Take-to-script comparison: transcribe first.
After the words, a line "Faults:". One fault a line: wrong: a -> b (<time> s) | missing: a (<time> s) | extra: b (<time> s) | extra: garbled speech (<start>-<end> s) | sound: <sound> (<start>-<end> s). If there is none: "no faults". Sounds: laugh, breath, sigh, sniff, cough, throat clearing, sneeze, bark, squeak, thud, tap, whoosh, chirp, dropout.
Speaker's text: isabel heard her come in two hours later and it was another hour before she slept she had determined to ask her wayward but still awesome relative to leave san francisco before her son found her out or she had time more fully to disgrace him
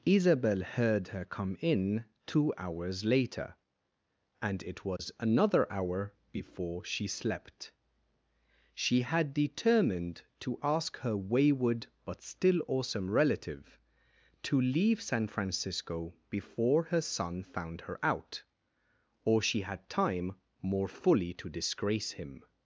isabel heard her come in two hours later and it was another hour before she slept she had determined to ask her wayward but still awesome relative to leave san francisco before her son found her out or she had time more fully to disgrace him
Faults:
sound: dropout (5.0-5.0 s)